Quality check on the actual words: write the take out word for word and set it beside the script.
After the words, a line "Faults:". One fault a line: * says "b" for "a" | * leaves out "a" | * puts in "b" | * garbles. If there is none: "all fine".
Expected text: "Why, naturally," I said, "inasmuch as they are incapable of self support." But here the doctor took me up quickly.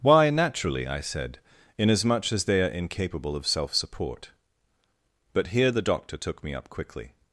"Why, naturally," I said, "inasmuch as they are incapable of self support." But here the doctor took me up quickly.
Faults:
all fine